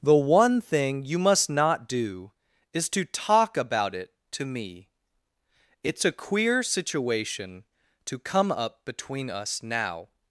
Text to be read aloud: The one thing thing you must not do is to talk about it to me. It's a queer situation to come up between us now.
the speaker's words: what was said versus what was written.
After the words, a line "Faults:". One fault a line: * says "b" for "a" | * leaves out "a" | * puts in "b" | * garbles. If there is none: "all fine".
The one thing you must not do is to talk about it to me. It's a queer situation to come up between us now.
Faults:
* leaves out "thing"